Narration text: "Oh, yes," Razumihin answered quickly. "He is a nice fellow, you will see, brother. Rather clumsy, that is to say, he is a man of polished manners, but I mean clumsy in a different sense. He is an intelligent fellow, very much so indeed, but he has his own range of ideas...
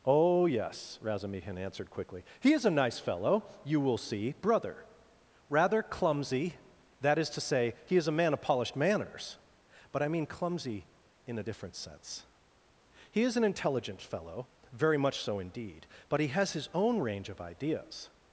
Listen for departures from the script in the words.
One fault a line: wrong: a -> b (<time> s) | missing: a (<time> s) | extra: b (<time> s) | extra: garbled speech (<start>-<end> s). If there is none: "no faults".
no faults